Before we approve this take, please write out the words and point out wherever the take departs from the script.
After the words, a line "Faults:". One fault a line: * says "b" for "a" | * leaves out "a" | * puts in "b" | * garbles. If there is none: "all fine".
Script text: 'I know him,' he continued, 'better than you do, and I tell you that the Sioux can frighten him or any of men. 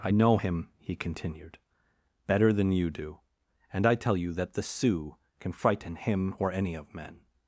'I know him,' he continued, 'better than you do, and I tell you that the Sioux can frighten him or any of men.
Faults:
all fine